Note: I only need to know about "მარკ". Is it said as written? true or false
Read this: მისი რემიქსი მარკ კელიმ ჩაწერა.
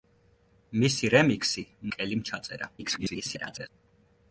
false